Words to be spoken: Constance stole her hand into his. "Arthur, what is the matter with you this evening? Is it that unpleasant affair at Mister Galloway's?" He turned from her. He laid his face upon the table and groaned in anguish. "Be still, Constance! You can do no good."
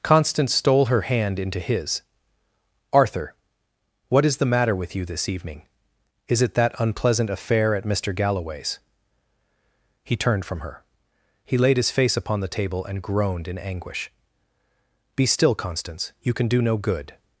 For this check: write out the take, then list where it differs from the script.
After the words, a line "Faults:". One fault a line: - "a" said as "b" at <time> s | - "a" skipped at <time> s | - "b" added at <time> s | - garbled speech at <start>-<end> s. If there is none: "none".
Constance stole her hand into his. "Arthur, what is the matter with you this evening? Is it that unpleasant affair at Mister Galloway's?" He turned from her. He laid his face upon the table and groaned in anguish. "Be still, Constance! You can do no good."
Faults:
none